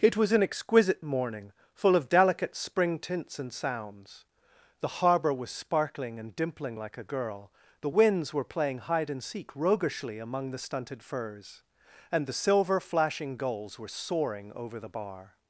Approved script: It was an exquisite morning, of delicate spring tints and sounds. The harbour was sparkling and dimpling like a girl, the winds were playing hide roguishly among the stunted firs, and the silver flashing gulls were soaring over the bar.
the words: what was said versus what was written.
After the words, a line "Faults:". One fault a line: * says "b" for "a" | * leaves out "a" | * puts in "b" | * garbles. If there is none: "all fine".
It was an exquisite morning, full of delicate spring tints and sounds. The harbour was sparkling and dimpling like a girl, the winds were playing hide and seek roguishly among the stunted firs, and the silver flashing gulls were soaring over the bar.
Faults:
* puts in "full"
* puts in "and seek"